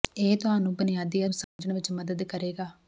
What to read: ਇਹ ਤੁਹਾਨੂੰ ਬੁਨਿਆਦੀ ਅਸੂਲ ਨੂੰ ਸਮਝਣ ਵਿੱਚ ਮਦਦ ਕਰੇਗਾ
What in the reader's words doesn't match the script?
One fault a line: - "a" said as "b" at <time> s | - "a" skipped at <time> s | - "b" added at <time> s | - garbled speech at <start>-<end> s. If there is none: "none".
- "ਅਸੂਲ" skipped at 1.2 s